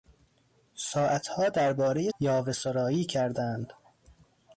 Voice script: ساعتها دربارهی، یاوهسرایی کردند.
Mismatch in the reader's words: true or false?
false